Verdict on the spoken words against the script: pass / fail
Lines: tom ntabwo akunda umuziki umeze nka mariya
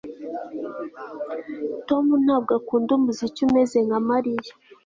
pass